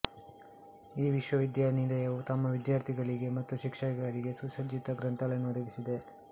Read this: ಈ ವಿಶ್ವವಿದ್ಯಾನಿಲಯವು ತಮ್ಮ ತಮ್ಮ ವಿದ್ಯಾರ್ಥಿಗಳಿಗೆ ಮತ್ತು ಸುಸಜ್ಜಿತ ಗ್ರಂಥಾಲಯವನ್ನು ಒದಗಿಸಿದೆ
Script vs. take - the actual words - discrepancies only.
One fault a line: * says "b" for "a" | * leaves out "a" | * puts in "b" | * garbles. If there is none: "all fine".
* leaves out "ತಮ್ಮ"
* puts in "ಶಿಕ್ಷಕರಿಗೆ"